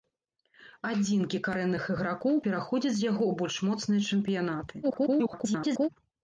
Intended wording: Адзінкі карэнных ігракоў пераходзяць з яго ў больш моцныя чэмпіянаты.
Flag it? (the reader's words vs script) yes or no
yes